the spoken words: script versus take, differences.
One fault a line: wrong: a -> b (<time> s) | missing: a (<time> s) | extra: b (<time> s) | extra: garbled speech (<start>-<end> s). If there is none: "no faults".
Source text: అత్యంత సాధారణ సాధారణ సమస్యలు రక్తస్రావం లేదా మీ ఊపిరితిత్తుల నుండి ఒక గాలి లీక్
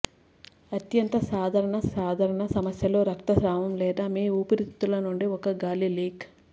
no faults